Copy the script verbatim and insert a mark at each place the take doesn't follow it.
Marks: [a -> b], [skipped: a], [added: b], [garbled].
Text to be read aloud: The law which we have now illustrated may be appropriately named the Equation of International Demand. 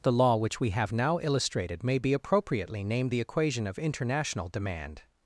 The law which we have now illustrated may be appropriately named the Equation of International Demand.